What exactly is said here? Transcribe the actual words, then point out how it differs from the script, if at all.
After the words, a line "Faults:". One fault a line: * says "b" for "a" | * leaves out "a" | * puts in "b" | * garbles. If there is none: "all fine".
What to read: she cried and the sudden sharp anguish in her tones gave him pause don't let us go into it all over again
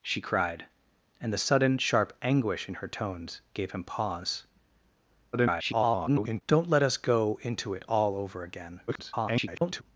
she cried and the sudden sharp anguish in her tones gave him pause [garbled] don't let us go into it all over again [garbled]
Faults:
* garbles
* garbles